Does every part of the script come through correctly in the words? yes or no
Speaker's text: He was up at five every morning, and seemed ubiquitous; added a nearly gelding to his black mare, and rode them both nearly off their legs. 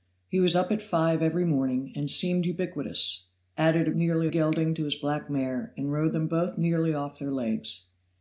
yes